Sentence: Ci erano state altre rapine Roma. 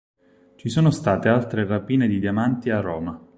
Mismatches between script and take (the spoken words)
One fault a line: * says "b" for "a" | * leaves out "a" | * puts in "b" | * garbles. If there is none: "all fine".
* says "sono" for "erano"
* puts in "di diamanti a"